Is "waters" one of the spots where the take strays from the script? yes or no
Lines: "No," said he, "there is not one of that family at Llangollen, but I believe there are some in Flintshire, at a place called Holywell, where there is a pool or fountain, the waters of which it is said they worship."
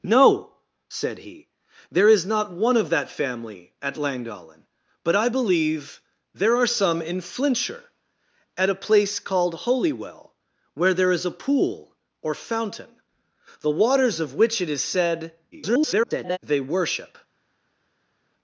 no